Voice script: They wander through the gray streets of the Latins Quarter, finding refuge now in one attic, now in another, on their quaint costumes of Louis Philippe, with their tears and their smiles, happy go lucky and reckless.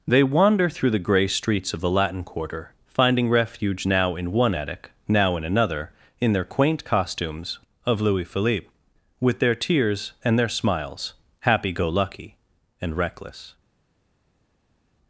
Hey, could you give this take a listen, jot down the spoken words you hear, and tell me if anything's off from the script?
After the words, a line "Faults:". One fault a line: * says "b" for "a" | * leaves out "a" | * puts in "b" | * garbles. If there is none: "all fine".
They wander through the gray streets of the Latin Quarter, finding refuge now in one attic, now in another, in their quaint costumes of Louis Philippe, with their tears and their smiles, happy go lucky and reckless.
Faults:
* says "Latin" for "Latins"
* says "in" for "on"